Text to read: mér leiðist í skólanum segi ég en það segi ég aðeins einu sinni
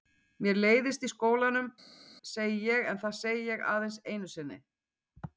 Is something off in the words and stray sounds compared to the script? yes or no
no